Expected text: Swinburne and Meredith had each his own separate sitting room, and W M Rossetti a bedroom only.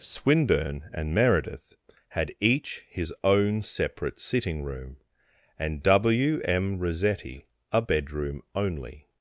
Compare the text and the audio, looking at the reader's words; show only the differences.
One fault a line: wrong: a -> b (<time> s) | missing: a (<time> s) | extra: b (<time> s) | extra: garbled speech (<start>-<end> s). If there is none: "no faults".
no faults